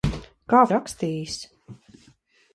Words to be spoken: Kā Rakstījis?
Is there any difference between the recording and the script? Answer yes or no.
no